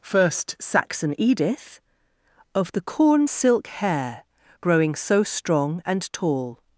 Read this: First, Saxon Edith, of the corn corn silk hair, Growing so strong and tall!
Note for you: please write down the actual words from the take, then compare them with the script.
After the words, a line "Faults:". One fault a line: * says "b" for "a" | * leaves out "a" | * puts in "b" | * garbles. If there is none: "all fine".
First, Saxon Edith, of the corn silk hair, Growing so strong and tall!
Faults:
* leaves out "corn"